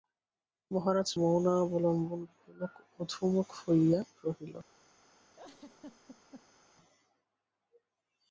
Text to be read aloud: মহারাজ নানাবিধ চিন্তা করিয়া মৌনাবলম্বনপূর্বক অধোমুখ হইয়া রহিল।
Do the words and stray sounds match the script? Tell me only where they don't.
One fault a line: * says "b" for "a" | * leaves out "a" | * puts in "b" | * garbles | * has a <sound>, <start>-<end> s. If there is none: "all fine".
* leaves out "নানাবিধ চিন্তা করিয়া"
* has a laugh, 5.3-6.6 s